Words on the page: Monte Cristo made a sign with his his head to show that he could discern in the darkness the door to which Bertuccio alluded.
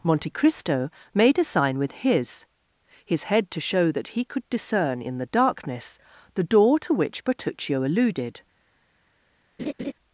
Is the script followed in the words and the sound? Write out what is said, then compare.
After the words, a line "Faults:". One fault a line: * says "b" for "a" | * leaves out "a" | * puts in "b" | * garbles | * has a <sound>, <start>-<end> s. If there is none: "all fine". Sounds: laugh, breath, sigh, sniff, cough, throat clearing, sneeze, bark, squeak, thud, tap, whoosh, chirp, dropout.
Monte Cristo made a sign with his his head to show that he could discern in the darkness the door to which Bertuccio alluded.
Faults:
* has a laugh, 9.6-9.9 s